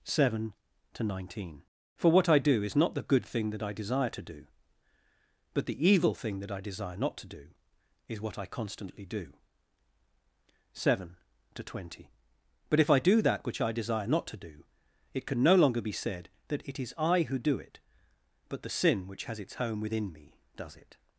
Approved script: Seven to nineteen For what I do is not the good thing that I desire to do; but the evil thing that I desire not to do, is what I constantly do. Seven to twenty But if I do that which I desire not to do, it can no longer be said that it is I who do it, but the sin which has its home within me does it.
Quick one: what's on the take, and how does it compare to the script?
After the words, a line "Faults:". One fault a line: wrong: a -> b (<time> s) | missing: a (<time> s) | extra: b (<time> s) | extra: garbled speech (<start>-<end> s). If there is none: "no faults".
Seven to nineteen For what I do is not the good thing that I desire to do; but the evil thing that I desire not to do, is what I constantly do. Seven to twenty But if I do that which I desire not to do, it can no longer be said that it is I who do it, but the sin which has its home within me does it.
Faults:
no faults